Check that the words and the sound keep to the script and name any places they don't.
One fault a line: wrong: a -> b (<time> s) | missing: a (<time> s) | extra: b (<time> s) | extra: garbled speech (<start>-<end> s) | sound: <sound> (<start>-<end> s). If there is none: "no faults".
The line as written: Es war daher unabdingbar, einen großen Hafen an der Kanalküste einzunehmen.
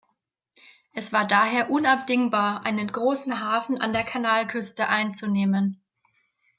no faults